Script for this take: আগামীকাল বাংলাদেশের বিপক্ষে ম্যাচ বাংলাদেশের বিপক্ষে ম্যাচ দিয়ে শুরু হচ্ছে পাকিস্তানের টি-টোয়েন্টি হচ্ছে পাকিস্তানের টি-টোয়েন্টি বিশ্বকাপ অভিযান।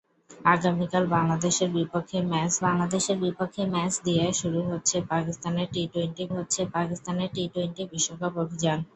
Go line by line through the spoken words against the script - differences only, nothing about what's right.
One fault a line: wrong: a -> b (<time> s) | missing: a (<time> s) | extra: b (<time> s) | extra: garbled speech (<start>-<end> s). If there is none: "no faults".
no faults